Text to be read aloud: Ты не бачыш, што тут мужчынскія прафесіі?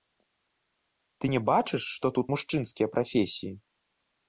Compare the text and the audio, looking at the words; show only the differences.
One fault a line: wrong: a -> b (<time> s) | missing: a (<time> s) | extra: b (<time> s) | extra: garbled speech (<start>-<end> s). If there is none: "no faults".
no faults